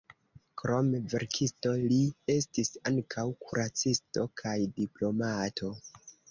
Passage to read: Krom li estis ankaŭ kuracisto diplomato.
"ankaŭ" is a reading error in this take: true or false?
false